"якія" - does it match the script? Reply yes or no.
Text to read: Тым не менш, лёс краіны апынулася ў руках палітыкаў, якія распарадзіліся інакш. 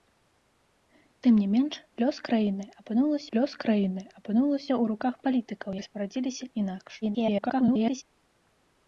no